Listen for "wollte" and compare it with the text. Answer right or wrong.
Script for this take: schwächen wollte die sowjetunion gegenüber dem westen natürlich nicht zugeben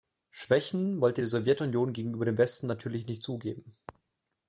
right